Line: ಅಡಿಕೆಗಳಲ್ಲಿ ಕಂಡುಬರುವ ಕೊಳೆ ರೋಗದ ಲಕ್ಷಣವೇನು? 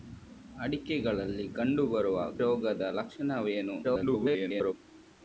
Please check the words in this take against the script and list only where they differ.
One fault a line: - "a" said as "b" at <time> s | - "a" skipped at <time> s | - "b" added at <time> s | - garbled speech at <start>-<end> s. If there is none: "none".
- "ಕೊಳೆ" skipped at 2.2 s
- garbled speech at 3.8-4.7 s